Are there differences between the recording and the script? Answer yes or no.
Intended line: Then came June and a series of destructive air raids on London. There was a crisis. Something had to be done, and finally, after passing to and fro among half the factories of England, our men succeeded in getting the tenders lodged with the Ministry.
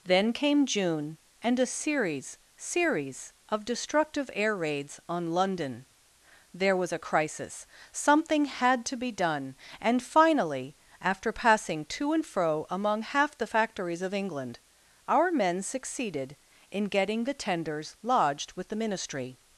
yes